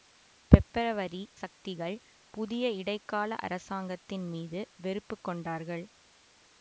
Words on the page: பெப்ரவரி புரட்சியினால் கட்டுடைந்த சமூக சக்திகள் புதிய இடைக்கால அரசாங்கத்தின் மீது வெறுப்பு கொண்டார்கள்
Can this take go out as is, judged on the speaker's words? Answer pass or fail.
fail